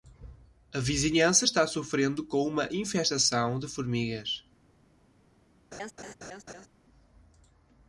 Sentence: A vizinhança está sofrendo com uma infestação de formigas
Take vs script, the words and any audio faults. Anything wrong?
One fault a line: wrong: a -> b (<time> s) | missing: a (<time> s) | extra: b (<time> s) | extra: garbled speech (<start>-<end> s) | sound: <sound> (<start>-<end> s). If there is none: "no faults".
sound: laugh (5.7-6.7 s)